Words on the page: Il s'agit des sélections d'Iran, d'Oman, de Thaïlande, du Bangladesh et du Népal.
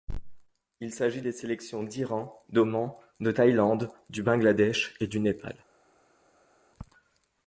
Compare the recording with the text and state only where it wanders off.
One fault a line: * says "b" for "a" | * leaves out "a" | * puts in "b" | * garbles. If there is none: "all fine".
all fine